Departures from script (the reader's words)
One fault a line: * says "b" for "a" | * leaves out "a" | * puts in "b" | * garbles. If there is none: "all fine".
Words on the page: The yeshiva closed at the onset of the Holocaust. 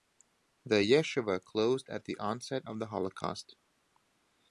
all fine